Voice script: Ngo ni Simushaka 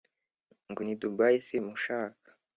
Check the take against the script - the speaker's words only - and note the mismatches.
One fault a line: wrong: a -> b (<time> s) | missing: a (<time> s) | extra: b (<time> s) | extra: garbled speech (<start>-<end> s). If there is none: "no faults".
extra: Dubai (1.0 s)